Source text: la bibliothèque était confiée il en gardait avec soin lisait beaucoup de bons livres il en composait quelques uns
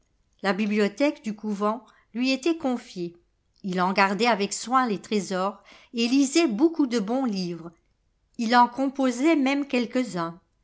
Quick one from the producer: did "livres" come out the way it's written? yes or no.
yes